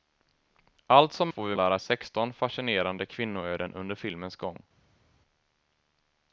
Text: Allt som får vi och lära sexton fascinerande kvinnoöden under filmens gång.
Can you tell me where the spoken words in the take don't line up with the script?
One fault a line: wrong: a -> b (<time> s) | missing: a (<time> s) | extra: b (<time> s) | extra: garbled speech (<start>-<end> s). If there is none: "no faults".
no faults